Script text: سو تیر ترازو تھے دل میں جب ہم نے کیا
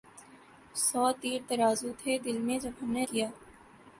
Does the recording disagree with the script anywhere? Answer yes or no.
no